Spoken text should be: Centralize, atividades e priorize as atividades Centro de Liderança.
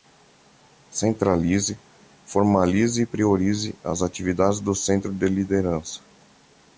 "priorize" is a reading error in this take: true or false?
false